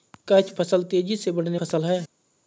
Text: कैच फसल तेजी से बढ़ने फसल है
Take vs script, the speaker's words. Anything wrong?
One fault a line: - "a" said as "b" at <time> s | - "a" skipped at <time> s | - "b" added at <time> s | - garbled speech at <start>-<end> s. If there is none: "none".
none